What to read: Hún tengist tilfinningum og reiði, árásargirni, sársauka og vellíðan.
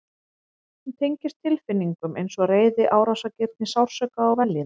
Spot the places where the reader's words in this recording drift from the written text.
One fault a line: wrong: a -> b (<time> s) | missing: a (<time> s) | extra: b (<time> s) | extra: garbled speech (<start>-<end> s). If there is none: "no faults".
extra: eins (2.2 s)